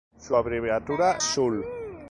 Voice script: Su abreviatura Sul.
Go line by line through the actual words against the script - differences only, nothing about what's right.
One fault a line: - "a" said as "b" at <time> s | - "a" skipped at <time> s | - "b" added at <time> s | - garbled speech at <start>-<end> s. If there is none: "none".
none